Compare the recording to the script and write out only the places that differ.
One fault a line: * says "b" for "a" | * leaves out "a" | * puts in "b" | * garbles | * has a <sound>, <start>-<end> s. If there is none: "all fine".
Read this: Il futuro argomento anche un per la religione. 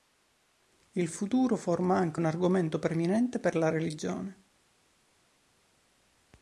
* says "forma" for "argomento"
* puts in "argomento preminente"